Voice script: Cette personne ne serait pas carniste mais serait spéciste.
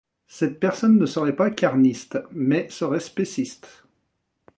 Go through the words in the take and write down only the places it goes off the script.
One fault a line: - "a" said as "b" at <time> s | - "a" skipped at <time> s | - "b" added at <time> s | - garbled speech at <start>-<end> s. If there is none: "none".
none